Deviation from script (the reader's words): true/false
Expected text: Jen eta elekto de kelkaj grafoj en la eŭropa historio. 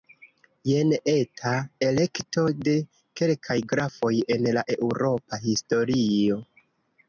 false